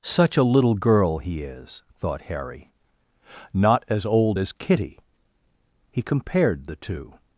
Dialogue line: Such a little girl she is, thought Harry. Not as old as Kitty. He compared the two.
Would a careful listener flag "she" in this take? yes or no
yes